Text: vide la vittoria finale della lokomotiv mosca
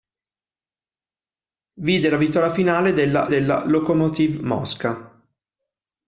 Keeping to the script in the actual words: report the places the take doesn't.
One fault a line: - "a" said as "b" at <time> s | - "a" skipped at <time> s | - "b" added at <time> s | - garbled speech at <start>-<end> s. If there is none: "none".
- "della" added at 3.3 s